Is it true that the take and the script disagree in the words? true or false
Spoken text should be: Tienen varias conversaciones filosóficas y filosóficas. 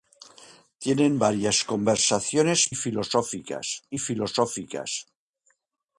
false